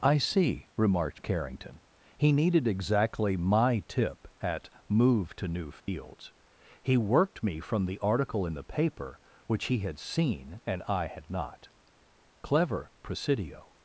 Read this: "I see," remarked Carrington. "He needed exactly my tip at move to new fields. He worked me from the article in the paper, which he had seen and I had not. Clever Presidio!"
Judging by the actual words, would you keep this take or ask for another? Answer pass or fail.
pass